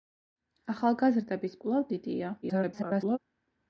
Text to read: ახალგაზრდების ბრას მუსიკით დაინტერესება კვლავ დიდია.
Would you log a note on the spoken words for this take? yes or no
yes